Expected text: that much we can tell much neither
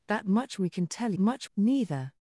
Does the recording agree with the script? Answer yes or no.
yes